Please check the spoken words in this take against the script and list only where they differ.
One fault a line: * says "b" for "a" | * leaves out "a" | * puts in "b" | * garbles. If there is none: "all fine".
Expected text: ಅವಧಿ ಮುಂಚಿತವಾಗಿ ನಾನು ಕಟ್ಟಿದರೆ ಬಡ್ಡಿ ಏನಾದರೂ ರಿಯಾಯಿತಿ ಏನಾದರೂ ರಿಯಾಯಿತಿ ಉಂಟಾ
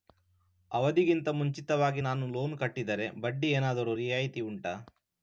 * puts in "ಗಿಂತ"
* puts in "ಲೋನ್"
* leaves out "ಏನಾದರೂ ರಿಯಾಯಿತಿ"